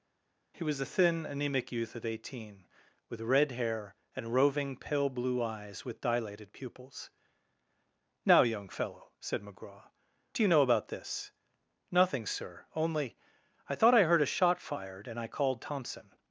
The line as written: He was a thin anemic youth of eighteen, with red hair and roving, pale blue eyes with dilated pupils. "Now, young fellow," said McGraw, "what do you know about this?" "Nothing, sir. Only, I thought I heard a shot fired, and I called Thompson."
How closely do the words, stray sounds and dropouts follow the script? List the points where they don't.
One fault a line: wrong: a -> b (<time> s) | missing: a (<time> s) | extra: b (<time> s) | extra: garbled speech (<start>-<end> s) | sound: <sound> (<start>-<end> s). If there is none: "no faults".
missing: what (9.9 s)